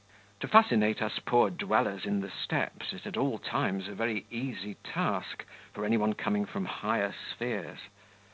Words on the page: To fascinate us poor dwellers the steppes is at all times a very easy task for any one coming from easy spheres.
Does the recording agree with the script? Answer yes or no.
no